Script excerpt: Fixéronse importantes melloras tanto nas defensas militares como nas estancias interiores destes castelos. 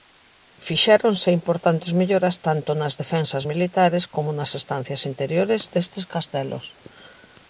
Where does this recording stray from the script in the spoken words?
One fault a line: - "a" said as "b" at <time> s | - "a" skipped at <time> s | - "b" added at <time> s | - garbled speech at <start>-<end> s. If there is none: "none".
none